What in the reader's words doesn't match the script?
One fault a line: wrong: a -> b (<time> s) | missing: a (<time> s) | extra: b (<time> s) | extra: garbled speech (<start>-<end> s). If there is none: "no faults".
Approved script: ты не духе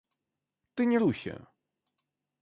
no faults